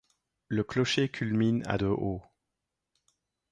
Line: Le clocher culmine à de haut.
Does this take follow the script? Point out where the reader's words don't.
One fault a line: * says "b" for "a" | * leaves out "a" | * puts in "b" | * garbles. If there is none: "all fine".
all fine